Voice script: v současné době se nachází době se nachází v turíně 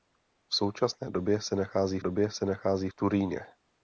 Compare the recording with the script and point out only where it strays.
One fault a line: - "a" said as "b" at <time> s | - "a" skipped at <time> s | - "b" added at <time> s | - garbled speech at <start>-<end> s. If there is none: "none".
none